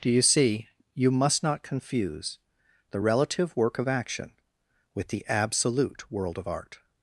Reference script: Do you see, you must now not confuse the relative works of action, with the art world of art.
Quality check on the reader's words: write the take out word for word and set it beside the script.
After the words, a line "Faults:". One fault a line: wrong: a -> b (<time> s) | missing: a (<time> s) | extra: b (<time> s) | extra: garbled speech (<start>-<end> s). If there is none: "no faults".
Do you see, you must not confuse the relative work of action, with the absolute world of art.
Faults:
missing: now (1.4 s)
wrong: works -> work (3.6 s)
wrong: art -> absolute (5.3 s)